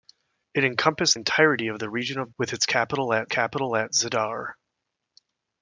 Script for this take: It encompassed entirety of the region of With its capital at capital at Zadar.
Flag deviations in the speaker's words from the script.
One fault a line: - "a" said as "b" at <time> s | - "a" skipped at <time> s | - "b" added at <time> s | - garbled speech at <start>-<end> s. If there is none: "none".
none